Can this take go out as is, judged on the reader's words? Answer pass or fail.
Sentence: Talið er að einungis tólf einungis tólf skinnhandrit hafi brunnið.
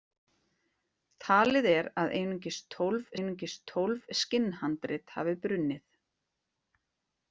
pass